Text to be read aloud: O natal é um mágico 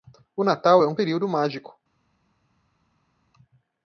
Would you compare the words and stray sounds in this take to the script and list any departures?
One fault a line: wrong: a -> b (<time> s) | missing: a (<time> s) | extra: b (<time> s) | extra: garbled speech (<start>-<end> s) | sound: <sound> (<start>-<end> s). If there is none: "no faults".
extra: período (0.9 s)